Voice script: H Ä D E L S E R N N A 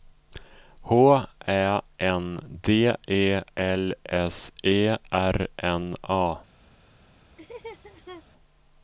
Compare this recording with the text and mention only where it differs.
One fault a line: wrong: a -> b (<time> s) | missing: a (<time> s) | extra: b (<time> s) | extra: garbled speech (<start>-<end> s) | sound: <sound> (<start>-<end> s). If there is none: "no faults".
extra: N (2.0 s)
missing: N (5.9 s)
sound: laugh (7.4-8.2 s)